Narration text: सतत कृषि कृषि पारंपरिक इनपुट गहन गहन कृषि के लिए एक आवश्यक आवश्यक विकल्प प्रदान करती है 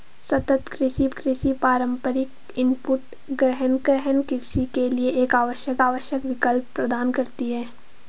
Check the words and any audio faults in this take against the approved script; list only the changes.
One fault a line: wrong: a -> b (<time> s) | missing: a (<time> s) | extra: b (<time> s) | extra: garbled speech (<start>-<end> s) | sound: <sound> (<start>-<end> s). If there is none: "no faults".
no faults